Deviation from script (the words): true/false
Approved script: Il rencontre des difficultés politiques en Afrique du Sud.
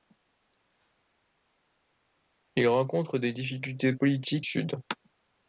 true